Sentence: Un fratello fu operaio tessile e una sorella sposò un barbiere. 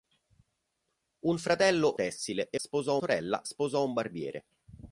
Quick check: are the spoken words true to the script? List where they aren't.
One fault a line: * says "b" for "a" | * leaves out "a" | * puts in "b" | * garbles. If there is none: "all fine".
* leaves out "fu operaio"
* says "sposò" for "una"